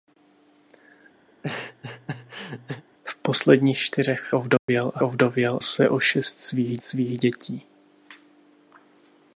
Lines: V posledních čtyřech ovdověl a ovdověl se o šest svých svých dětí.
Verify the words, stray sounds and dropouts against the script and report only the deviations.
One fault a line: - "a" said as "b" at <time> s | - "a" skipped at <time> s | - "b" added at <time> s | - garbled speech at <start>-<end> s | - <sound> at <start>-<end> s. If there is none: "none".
- laugh at 1.3-2.8 s
- dropout at 4.6-4.7 s